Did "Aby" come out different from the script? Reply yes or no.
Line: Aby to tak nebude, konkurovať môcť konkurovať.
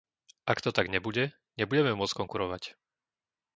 yes